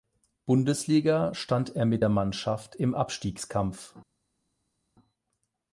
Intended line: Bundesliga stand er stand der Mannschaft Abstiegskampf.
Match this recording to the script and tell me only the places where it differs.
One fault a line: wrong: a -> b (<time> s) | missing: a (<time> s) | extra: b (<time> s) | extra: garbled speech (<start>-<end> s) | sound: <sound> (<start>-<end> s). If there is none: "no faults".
wrong: stand -> mit (1.8 s)
extra: im (2.7 s)